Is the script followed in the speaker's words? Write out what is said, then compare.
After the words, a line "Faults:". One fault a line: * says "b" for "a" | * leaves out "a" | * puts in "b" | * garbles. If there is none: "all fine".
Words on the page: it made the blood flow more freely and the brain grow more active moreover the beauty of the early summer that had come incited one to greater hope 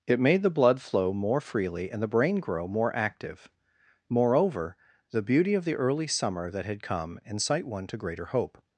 it made the blood flow more freely and the brain grow more active moreover the beauty of the early summer that had come incite one to greater hope
Faults:
* says "incite" for "incited"